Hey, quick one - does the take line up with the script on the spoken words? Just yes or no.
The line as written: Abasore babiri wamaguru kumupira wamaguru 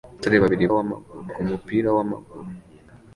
yes